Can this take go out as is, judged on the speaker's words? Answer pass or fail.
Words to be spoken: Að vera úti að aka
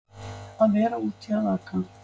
pass